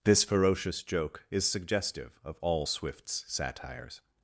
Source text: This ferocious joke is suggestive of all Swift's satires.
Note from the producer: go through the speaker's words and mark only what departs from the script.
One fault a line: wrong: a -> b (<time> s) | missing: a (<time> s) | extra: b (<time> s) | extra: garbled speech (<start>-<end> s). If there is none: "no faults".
no faults